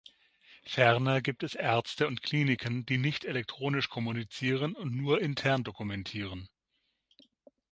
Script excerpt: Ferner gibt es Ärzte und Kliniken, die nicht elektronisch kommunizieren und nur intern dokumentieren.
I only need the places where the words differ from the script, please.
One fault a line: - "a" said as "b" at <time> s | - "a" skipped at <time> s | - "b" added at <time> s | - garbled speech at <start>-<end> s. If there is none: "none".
none